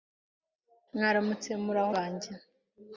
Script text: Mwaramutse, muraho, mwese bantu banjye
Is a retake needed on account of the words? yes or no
yes